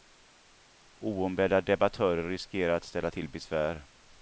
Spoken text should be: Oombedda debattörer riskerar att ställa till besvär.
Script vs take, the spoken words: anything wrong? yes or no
no